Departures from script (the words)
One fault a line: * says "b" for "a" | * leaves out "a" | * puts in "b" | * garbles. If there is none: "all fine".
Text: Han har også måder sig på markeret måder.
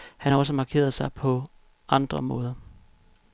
* says "markeret" for "måder"
* says "andre" for "markeret"